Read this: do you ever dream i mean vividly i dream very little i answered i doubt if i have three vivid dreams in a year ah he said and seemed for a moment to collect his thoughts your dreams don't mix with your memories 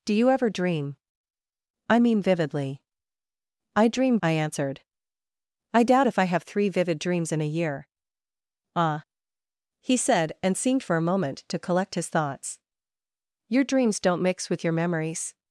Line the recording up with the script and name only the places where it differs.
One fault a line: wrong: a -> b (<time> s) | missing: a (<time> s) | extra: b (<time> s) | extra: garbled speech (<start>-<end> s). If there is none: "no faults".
missing: very little (4.2 s)